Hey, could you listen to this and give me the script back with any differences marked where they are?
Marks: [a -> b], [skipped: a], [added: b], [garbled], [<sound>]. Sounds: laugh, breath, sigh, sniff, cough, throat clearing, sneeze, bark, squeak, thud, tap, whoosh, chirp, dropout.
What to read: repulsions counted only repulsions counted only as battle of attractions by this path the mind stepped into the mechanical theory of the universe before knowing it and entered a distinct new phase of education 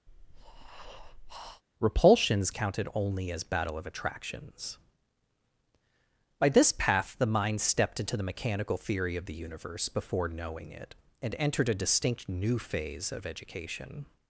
[breath] repulsions counted only [skipped: repulsions counted only] as battle of attractions by this path the mind stepped into the mechanical theory of the universe before knowing it and entered a distinct new phase of education